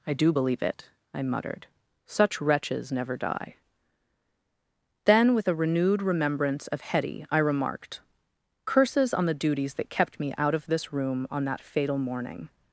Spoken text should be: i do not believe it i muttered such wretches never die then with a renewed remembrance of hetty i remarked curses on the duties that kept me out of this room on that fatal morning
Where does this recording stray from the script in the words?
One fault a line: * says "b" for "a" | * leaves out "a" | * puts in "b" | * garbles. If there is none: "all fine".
* leaves out "not"